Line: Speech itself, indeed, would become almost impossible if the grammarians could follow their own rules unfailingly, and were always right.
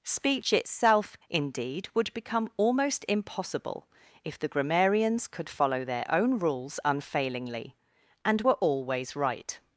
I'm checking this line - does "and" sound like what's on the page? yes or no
yes